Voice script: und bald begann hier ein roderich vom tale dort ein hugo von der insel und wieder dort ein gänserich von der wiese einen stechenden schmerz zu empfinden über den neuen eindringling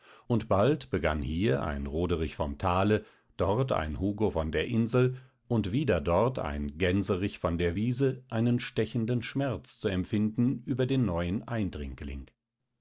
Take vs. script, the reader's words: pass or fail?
pass